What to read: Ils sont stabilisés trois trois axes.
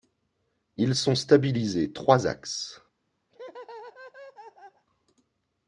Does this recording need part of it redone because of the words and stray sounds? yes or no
yes